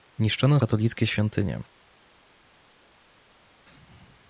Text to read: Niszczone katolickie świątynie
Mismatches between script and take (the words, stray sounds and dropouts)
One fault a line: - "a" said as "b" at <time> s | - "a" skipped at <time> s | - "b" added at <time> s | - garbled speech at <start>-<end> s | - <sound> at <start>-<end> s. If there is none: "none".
none